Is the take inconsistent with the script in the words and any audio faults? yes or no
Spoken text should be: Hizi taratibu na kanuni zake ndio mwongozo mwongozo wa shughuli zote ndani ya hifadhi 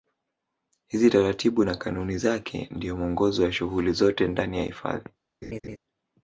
yes